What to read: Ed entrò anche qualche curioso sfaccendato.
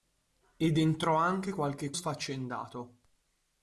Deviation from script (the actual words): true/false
true